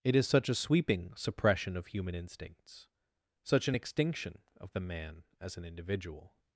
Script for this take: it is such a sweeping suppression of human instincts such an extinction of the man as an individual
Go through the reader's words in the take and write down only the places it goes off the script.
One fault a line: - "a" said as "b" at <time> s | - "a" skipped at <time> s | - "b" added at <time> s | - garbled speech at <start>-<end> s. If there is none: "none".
none